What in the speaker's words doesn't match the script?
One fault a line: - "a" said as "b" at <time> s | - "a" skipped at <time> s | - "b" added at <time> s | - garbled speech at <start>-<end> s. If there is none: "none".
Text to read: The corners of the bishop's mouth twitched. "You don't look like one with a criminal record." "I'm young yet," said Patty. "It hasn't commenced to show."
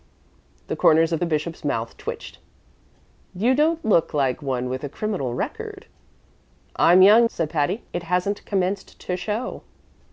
- "yet" skipped at 7.3 s